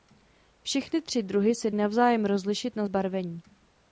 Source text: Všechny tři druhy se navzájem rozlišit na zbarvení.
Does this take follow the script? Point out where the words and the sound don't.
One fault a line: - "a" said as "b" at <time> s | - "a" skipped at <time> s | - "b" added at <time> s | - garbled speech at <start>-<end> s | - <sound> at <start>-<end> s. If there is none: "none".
none